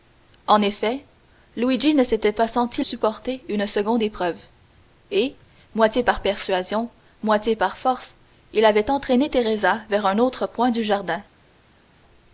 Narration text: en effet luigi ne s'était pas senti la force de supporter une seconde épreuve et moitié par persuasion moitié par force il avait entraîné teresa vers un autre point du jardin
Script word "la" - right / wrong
wrong